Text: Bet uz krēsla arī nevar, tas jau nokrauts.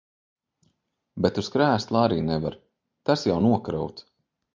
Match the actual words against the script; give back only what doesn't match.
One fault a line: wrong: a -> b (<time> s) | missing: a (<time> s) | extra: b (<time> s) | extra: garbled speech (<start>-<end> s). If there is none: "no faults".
no faults